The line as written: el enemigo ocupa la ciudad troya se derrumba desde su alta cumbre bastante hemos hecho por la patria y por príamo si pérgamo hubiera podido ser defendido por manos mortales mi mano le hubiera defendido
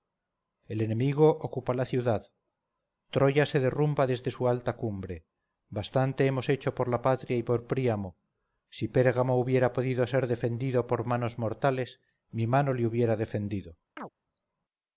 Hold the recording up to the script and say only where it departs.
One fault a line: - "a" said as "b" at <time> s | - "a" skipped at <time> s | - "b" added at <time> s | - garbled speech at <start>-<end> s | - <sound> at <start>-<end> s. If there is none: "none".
- chirp at 14.0-14.1 s